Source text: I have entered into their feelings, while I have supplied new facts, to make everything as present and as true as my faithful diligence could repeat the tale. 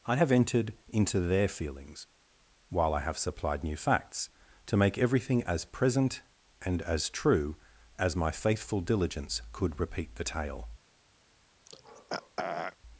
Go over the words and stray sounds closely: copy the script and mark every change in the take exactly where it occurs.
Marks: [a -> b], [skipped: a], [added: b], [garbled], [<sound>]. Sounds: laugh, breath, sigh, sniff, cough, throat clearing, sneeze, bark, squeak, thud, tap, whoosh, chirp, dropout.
I have entered into their feelings, while I have supplied new facts, to make everything as present and as true as my faithful diligence could repeat the tale. [throat clearing]